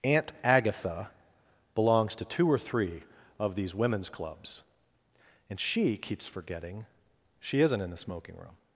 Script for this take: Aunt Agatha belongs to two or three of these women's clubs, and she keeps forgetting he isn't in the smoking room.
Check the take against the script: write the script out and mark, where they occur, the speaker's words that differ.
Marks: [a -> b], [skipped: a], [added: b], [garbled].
Aunt Agatha belongs to two or three of these women's clubs, and she keeps forgetting [he -> she] isn't in the smoking room.